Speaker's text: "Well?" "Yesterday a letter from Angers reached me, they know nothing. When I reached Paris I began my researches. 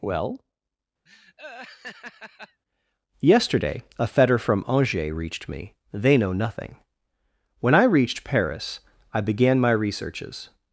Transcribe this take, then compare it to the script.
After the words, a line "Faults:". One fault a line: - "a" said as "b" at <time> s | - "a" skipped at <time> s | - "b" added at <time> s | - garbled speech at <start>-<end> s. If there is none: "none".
"Well?" "Yesterday a fetter from Angers reached me, they know nothing. When I reached Paris I began my researches.
Faults:
- "letter" said as "fetter" at 4.1 s